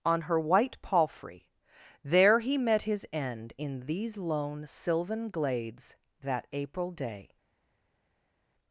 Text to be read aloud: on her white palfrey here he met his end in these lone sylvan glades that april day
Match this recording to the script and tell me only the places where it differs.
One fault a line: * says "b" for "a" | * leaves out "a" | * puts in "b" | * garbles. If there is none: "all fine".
* says "there" for "here"